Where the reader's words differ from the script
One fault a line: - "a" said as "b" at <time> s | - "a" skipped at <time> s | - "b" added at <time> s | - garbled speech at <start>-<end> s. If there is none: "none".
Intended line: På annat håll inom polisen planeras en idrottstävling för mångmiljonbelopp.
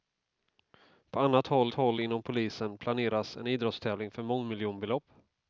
- "håll" added at 1.7 s